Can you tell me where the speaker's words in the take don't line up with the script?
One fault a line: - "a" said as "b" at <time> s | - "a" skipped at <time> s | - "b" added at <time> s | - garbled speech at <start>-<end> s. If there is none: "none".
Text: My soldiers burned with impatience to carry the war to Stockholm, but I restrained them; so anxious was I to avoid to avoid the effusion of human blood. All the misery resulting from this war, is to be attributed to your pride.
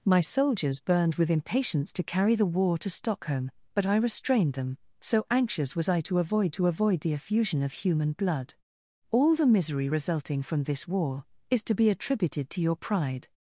none